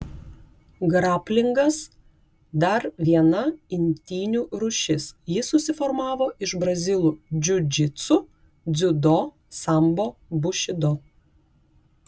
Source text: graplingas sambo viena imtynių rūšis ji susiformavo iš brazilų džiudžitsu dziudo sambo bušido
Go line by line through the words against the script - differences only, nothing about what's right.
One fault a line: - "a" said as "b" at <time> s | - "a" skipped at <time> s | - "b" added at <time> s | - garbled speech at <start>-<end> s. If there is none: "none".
- "sambo" said as "dar" at 2.6 s